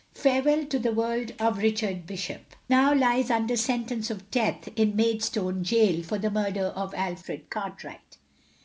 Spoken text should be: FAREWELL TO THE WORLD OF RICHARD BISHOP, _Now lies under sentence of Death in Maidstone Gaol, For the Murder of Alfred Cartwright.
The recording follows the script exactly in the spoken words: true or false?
true